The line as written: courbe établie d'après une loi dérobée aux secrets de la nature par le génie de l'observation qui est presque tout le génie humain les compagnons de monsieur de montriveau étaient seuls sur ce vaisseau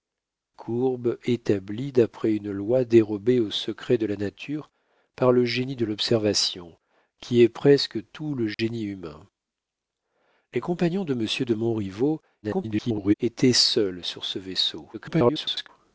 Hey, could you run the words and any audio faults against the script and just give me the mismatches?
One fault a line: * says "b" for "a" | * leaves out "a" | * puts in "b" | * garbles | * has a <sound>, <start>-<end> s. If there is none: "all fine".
* has a dropout, 8.5-8.6 s
* garbles
* garbles